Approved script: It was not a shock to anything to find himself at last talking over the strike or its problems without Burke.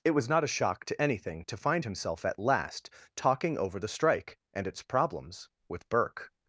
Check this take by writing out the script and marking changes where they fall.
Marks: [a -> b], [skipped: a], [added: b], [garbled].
It was not a shock to anything to find himself at last talking over the strike [or -> and] its problems [without -> with] Burke.